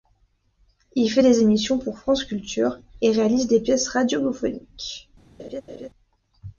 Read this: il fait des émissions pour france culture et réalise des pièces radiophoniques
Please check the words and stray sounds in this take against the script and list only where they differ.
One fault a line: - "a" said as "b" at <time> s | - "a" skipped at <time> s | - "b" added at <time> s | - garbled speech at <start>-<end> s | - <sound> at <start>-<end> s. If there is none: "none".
- laugh at 5.4-5.9 s